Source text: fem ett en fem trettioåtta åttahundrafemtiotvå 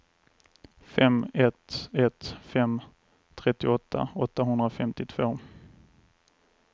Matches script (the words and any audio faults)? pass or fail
fail